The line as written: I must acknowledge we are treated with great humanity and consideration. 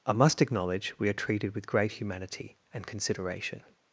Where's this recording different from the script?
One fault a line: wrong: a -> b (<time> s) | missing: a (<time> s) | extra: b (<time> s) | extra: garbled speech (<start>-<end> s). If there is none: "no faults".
no faults